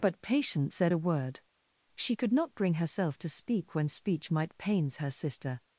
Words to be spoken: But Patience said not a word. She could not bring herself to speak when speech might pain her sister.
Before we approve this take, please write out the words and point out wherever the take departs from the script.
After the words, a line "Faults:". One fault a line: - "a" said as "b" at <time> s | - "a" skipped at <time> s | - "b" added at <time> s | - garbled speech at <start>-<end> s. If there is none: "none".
But Patience said a word. She could not bring herself to speak when speech might pains her sister.
Faults:
- "not" skipped at 0.9 s
- "pain" said as "pains" at 4.6 s